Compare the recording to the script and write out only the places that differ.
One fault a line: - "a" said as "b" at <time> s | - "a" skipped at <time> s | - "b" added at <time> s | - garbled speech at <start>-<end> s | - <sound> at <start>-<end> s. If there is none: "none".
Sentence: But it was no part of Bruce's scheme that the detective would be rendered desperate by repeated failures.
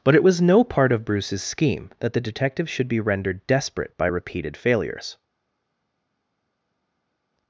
- "would" said as "should" at 2.7 s